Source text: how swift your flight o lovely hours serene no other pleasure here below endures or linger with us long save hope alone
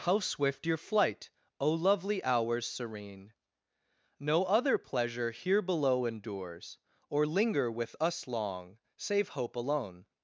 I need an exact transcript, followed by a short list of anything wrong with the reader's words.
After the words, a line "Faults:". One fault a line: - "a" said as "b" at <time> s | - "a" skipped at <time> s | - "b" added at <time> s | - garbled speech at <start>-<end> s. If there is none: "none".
how swift your flight o lovely hours serene no other pleasure here below endures or linger with us long save hope alone
Faults:
none